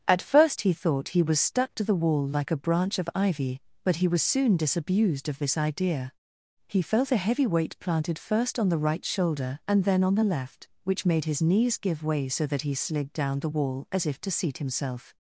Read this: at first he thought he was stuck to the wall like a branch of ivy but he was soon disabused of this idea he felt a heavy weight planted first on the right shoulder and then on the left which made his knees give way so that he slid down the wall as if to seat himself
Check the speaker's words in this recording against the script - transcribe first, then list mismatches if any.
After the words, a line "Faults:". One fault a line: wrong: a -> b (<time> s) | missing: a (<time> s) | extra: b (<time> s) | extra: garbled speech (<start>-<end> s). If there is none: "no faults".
at first he thought he was stuck to the wall like a branch of ivy but he was soon disabused of this idea he felt a heavy weight planted first on the right shoulder and then on the left which made his knees give way so that he slid down the wall as if to seat himself
Faults:
no faults